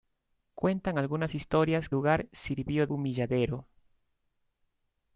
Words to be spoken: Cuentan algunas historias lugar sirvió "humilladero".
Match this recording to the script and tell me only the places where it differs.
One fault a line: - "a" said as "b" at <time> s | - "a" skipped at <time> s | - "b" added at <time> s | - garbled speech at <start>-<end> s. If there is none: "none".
none